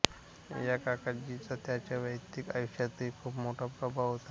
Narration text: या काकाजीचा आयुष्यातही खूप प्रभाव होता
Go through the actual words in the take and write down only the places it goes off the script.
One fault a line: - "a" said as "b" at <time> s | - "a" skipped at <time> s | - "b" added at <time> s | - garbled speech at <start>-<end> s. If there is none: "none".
- "त्यांच्या वैयक्तिक" added at 1.6 s
- "मोठा" added at 3.4 s